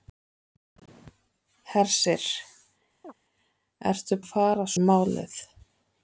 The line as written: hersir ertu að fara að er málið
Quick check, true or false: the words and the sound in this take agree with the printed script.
false